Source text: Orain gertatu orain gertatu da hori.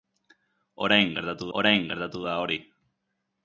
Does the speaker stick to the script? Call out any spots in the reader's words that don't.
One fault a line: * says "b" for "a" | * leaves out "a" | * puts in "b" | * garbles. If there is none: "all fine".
all fine